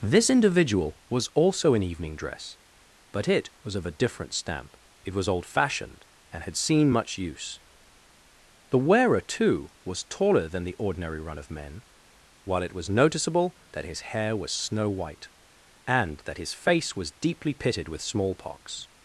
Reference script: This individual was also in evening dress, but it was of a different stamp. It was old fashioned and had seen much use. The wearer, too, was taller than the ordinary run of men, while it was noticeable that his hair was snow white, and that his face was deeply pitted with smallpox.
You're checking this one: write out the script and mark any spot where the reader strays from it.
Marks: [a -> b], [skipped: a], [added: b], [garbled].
This individual was also in evening dress, but it was of a different stamp. It was old fashioned and had seen much use. The wearer, too, was taller than the ordinary run of men, while it was noticeable that his hair was snow white, and that his face was deeply pitted with smallpox.